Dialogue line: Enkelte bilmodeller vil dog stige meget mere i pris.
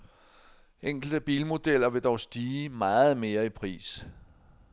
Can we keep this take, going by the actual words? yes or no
yes